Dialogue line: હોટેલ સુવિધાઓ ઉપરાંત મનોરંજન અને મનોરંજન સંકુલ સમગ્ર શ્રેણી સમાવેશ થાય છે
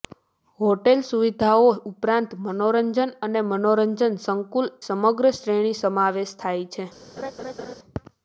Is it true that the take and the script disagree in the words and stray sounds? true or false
true